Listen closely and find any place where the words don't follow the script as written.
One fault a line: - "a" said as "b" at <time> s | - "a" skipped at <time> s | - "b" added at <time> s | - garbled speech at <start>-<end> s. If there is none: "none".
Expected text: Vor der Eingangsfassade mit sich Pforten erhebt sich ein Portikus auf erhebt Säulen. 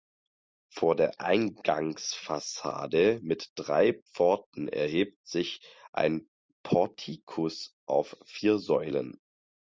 - "sich" said as "drei" at 3.5 s
- "erhebt" said as "vier" at 8.2 s